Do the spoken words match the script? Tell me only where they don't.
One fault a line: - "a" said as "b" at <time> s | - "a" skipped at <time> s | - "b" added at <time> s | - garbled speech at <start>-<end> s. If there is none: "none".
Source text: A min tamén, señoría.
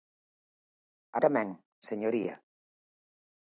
- "min" skipped at 1.2 s